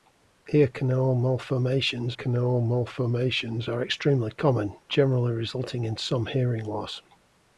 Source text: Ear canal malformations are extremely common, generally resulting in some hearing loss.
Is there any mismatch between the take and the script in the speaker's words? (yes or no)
yes